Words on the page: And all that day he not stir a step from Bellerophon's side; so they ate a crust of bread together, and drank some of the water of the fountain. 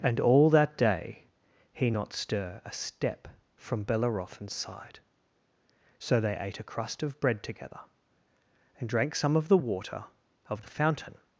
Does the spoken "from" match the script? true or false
true